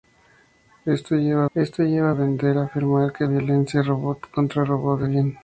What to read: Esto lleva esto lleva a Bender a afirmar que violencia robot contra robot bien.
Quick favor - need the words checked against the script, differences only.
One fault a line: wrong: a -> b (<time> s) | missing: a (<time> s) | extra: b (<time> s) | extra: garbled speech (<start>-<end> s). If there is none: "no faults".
no faults